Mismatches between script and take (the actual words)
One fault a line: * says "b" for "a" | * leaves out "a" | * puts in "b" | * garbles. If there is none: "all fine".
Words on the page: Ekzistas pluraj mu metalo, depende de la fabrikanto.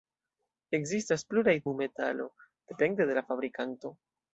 all fine